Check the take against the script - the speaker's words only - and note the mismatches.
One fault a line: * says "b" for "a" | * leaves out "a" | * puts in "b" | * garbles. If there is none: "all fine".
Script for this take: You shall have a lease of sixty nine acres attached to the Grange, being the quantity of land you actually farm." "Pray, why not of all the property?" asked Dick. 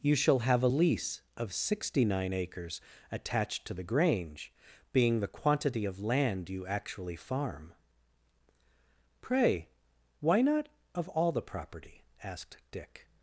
all fine